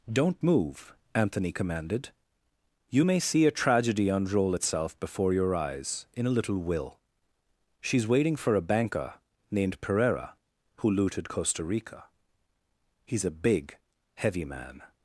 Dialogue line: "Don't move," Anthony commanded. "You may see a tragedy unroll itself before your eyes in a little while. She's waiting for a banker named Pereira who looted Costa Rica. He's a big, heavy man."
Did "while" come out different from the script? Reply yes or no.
yes